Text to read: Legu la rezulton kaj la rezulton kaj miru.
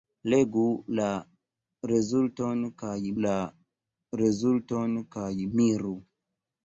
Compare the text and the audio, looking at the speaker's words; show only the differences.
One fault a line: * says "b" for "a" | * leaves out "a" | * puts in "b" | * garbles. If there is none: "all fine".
all fine